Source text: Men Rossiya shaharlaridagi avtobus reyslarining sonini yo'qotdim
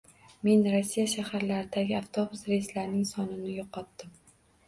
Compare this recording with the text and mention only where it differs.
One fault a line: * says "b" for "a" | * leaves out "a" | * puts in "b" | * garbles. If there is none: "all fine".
all fine